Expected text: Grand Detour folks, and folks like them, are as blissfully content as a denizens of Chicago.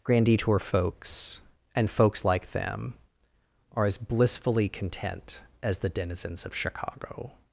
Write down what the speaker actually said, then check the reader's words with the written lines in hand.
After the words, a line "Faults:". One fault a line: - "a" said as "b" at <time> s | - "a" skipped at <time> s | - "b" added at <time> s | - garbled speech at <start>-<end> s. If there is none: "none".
Grand Detour folks, and folks like them, are as blissfully content as the denizens of Chicago.
Faults:
- "a" said as "the" at 5.8 s